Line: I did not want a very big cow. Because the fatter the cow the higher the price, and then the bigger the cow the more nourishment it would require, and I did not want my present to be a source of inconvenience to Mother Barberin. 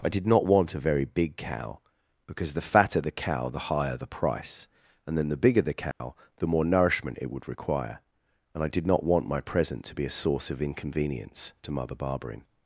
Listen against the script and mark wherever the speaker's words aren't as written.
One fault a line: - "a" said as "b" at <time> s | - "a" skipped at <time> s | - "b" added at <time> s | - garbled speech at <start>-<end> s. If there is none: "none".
none